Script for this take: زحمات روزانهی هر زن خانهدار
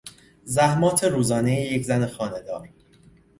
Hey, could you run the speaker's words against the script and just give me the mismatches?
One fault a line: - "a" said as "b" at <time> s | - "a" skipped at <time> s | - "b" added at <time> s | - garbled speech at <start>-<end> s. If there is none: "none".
- "هر" said as "یک" at 1.6 s